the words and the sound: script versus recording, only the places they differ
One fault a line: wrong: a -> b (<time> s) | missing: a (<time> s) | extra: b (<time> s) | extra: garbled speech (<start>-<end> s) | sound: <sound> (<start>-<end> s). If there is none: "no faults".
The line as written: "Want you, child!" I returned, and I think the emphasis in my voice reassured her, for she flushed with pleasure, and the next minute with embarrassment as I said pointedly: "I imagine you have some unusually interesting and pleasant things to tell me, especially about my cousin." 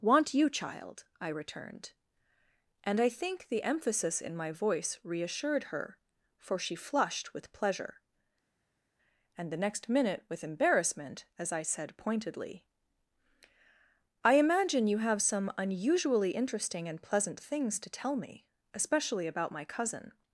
no faults